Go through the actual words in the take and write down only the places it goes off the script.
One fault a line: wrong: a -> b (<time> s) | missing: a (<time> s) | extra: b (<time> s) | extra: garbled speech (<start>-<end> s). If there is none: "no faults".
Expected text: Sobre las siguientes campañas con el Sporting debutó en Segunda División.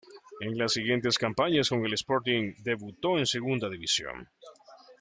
wrong: Sobre -> En (0.4 s)